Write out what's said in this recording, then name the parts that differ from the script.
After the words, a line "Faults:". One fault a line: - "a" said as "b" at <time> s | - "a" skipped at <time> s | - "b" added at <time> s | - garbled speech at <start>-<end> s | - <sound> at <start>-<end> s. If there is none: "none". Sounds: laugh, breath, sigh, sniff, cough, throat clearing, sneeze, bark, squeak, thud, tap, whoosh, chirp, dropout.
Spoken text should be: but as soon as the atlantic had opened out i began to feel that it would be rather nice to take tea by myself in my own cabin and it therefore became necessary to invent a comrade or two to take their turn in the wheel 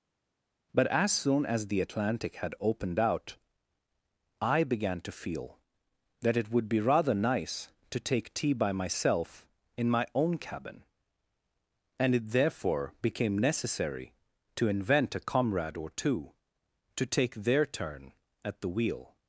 but as soon as the atlantic had opened out i began to feel that it would be rather nice to take tea by myself in my own cabin and it therefore became necessary to invent a comrade or two to take their turn at the wheel
Faults:
- "in" said as "at" at 18.4 s